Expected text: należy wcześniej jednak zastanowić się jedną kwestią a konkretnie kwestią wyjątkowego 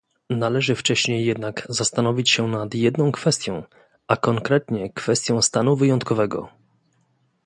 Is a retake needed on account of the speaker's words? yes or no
yes